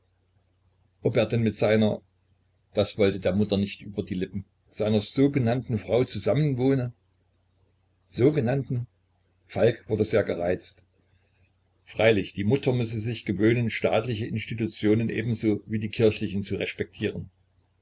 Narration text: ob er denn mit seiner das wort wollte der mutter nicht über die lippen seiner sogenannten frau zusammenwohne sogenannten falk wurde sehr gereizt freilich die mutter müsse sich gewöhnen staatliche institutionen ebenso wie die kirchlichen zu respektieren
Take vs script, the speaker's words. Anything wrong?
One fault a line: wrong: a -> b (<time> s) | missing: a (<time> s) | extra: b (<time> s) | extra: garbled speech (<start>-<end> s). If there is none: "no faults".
missing: wort (3.0 s)